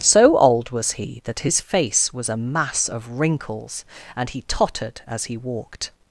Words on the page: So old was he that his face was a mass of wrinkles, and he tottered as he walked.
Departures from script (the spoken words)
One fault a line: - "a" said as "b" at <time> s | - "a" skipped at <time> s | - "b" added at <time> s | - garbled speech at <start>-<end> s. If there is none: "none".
none